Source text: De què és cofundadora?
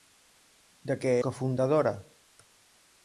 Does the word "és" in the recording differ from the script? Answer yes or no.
yes